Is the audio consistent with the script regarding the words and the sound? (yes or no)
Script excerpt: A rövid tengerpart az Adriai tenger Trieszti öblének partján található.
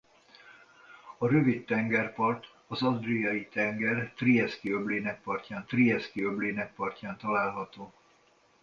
no